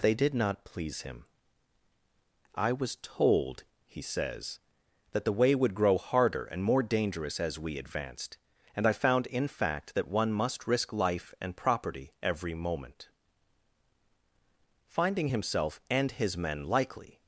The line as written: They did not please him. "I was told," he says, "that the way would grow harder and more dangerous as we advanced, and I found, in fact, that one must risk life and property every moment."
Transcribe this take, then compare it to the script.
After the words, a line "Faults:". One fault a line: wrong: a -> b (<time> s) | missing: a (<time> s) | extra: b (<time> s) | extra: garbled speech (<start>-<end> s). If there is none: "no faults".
They did not please him. "I was told," he says, "that the way would grow harder and more dangerous as we advanced, and I found, in fact, that one must risk life and property every moment." Finding himself and his men likely
Faults:
extra: Finding himself and his men likely (14.9 s)